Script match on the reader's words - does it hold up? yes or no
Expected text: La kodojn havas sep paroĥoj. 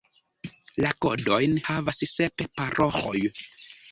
yes